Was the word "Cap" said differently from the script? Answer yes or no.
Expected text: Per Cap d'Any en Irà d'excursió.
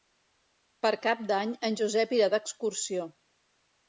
no